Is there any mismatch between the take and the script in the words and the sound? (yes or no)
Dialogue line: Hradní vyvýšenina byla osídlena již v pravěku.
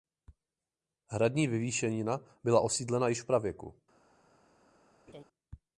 yes